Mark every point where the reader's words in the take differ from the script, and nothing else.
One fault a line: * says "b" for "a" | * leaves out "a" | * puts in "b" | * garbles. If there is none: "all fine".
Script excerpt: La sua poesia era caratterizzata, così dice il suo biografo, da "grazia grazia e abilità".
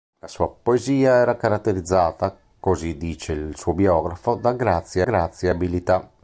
all fine